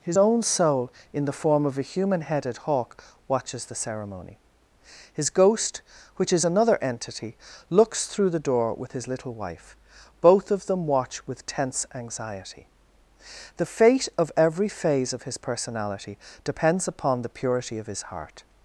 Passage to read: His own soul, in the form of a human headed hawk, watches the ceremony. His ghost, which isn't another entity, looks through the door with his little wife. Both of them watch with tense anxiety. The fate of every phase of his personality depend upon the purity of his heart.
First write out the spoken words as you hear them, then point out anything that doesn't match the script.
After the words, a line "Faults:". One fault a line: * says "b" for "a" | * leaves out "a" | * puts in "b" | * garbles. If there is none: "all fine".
His own soul, in the form of a human headed hawk, watches the ceremony. His ghost, which is another entity, looks through the door with his little wife. Both of them watch with tense anxiety. The fate of every phase of his personality depends upon the purity of his heart.
Faults:
* says "is" for "isn't"
* says "depends" for "depend"